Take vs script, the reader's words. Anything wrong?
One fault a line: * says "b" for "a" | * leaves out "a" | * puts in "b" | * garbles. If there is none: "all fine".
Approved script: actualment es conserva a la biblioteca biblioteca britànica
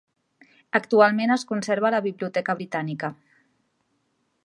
* leaves out "biblioteca"